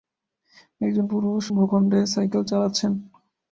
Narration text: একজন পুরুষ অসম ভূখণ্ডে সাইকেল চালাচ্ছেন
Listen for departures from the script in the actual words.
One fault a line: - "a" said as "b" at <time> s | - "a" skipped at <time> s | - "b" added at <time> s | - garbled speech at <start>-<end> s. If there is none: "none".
- "অসম" skipped at 1.4 s